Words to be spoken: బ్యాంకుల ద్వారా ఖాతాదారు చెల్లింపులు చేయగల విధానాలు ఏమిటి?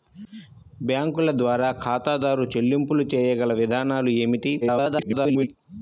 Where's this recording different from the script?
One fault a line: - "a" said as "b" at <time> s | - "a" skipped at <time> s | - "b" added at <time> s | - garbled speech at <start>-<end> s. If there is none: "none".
- garbled speech at 4.6-5.5 s